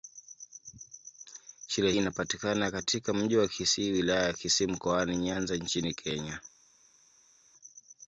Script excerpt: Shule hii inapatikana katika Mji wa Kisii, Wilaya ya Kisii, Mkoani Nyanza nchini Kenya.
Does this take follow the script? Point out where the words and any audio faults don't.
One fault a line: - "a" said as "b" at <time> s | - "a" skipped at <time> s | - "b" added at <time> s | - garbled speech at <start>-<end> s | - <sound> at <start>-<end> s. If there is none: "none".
- "hii" skipped at 1.9 s